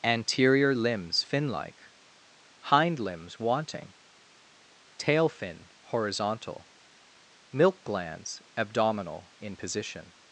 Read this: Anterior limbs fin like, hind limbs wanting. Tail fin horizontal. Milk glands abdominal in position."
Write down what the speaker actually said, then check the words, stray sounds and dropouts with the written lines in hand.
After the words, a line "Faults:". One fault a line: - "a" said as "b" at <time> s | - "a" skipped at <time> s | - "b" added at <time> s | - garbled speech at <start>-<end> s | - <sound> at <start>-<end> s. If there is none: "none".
Anterior limbs fin like, hind limbs wanting. Tail fin horizontal. Milk glands abdominal in position."
Faults:
none